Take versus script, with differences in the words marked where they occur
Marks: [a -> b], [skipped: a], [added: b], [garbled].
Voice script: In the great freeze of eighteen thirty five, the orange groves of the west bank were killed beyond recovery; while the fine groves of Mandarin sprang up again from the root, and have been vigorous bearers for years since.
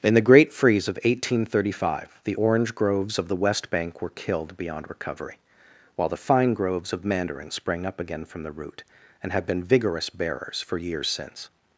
In the great freeze of eighteen thirty five, the orange groves of the west bank were killed beyond recovery; while the fine groves of Mandarin sprang up again from the root, and have been vigorous bearers for years since.